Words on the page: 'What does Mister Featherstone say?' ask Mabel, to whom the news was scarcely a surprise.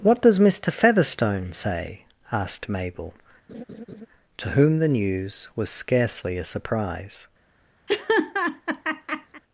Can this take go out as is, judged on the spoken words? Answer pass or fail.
fail